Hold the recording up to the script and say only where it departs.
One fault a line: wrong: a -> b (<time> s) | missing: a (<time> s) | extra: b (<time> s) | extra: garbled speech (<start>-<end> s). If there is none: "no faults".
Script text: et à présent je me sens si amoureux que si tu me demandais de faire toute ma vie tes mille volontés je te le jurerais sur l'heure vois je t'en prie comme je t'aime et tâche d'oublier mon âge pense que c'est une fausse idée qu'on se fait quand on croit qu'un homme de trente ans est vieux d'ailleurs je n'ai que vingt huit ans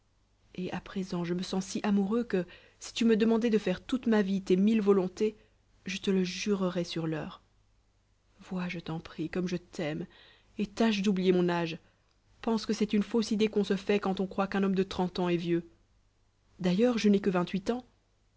no faults